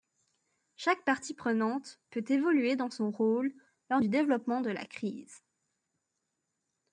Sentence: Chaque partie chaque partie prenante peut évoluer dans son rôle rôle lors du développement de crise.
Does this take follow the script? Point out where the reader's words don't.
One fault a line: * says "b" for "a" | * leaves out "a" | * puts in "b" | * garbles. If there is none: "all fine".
* leaves out "chaque partie"
* leaves out "rôle"
* puts in "la"